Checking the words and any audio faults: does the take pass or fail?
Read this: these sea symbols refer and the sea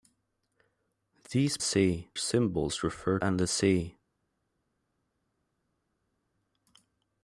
pass